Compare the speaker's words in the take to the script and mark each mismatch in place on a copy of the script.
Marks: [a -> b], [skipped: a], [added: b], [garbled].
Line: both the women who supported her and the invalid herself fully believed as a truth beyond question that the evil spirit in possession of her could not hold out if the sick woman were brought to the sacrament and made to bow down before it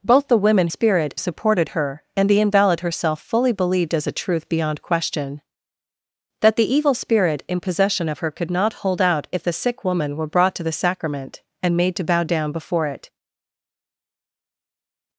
both the women [who -> spirit] supported her and the invalid herself fully believed as a truth beyond question that the evil spirit in possession of her could not hold out if the sick woman were brought to the sacrament and made to bow down before it